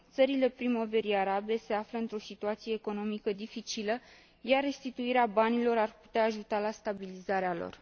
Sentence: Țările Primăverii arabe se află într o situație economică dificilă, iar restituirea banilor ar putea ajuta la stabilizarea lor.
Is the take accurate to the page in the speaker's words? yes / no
yes